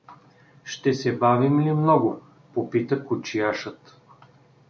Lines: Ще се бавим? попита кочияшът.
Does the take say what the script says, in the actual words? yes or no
no